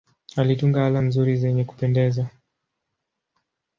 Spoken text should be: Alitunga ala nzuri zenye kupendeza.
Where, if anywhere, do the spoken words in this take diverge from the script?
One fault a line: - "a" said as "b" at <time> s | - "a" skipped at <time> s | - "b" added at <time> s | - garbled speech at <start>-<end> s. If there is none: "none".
none